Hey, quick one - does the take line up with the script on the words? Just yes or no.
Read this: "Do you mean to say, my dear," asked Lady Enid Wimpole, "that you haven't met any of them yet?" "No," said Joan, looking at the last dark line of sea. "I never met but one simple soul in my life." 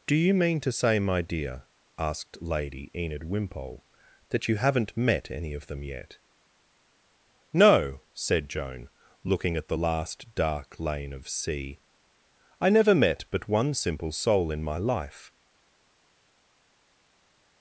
no